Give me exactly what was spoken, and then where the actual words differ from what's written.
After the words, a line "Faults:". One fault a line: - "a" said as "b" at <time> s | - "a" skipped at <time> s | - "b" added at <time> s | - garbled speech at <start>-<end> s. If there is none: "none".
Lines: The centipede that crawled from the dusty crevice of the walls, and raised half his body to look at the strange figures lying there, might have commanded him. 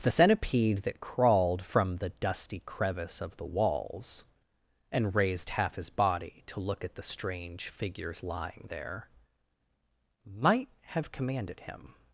The centipede that crawled from the dusty crevice of the walls, and raised half his body to look at the strange figures lying there, might have commanded him.
Faults:
none